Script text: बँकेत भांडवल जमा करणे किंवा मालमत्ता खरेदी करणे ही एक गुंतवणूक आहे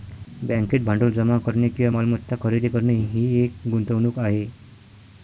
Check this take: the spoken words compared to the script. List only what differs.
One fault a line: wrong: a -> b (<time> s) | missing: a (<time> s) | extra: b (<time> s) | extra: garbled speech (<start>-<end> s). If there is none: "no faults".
no faults